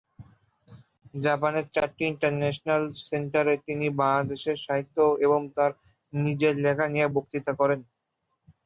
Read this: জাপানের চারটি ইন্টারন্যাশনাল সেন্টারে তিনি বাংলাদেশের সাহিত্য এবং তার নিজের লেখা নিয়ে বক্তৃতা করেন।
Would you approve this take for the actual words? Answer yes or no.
yes